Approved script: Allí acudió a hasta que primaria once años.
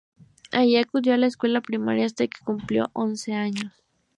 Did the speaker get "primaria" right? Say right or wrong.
wrong